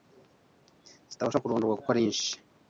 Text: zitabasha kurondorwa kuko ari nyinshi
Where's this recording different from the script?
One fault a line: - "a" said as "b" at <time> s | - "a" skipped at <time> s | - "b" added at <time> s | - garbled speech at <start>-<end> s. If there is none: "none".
none